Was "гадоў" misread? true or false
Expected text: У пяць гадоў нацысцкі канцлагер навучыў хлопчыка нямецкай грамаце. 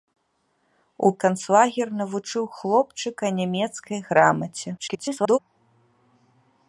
true